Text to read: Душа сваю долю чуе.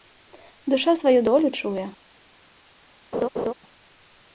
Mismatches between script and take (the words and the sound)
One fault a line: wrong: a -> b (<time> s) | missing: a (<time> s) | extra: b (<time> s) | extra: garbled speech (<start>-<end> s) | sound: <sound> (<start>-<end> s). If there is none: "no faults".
sound: laugh (3.1-3.5 s)